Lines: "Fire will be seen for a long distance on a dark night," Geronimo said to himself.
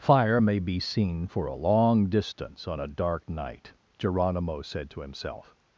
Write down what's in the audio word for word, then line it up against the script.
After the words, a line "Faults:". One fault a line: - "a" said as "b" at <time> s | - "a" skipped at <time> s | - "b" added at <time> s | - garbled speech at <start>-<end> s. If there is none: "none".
"Fire may be seen for a long distance on a dark night," Geronimo said to himself.
Faults:
- "will" said as "may" at 0.4 s